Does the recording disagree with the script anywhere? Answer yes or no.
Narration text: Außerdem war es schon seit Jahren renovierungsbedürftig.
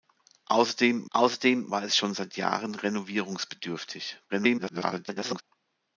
yes